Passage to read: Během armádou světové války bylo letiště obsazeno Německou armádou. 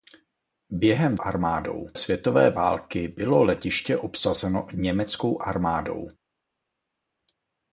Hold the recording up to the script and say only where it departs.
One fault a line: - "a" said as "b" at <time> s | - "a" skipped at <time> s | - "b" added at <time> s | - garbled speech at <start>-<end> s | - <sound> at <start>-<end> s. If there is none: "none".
none